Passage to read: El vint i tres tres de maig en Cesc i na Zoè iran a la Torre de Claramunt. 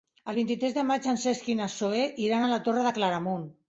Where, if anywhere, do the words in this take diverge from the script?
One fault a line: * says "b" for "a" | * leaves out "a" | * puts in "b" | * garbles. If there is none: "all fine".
* leaves out "tres"